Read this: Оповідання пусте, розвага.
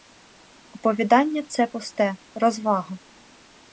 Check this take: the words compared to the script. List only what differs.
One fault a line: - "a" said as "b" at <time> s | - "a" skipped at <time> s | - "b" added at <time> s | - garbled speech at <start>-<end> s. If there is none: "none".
- "це" added at 1.5 s